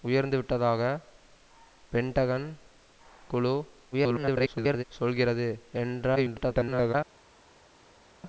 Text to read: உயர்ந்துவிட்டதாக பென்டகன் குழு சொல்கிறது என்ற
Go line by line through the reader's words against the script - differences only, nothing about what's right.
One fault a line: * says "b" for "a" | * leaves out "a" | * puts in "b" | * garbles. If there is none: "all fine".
* garbles
* garbles